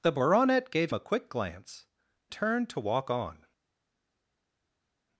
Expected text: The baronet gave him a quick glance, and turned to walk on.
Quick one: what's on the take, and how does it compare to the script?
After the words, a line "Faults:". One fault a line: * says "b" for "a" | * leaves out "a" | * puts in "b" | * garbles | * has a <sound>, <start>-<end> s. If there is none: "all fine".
The baronet gave a quick glance, turned to walk on.
Faults:
* leaves out "him"
* leaves out "and"